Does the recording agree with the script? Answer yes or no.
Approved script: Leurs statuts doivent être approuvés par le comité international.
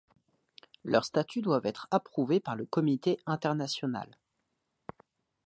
yes